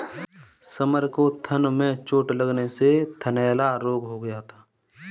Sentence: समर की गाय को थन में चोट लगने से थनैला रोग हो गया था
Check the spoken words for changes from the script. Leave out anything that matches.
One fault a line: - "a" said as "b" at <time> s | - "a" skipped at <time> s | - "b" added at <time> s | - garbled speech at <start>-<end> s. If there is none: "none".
- "की गाय" skipped at 1.1 s